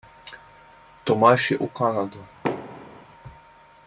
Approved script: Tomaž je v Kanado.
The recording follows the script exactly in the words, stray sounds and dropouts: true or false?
false